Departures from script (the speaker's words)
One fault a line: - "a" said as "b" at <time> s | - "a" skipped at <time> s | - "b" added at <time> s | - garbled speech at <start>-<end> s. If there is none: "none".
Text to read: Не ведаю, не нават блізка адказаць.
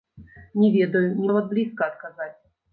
none